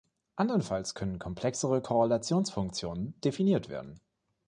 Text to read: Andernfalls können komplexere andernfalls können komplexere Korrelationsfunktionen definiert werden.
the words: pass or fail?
fail